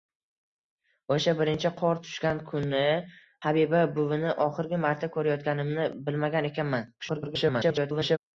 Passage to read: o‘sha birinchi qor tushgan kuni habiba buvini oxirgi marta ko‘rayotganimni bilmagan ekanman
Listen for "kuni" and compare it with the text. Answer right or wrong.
right